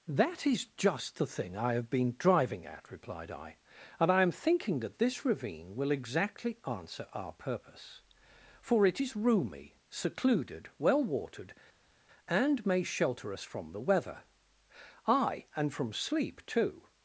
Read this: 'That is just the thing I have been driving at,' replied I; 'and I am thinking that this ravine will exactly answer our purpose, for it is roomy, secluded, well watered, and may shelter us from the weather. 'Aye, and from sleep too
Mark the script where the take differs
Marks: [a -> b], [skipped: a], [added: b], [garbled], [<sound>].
'That is just the thing I have been driving at,' replied I; 'and I am thinking that this ravine will exactly answer our purpose, for it is roomy, secluded, well watered, and may shelter us from the weather. 'Aye, and from sleep too